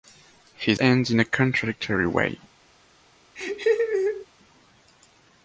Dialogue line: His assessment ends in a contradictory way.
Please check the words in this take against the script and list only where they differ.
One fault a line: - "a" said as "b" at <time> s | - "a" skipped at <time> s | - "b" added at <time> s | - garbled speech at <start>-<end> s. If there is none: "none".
- "assessment" skipped at 0.8 s